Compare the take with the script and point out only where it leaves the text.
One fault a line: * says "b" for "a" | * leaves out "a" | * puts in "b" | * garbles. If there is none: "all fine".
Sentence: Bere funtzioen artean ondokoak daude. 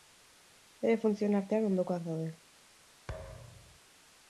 all fine